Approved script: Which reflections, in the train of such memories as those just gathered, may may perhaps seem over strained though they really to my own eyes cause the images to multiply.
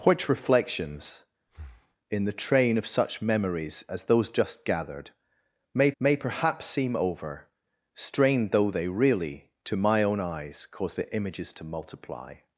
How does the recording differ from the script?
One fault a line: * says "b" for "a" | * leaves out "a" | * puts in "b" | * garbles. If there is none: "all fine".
all fine